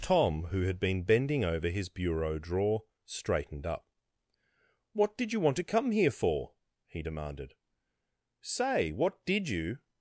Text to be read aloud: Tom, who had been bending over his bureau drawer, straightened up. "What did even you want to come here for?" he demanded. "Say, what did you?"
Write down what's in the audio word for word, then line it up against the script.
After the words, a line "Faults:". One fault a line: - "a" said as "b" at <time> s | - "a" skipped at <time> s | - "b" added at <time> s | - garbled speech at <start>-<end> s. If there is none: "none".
Tom, who had been bending over his bureau drawer, straightened up. "What did you want to come here for?" he demanded. "Say, what did you?"
Faults:
- "even" skipped at 5.3 s